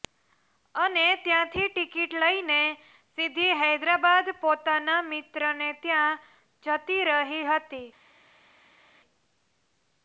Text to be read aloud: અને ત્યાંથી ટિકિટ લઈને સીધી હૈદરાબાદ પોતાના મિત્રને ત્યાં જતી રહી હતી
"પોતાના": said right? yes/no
yes